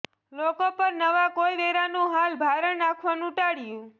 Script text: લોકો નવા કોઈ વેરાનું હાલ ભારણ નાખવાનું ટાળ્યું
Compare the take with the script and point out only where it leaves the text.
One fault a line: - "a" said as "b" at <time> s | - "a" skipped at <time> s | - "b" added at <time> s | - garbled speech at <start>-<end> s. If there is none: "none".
- "પર" added at 0.7 s